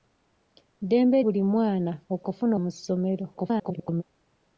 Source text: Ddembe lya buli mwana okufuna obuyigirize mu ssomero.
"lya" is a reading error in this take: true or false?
true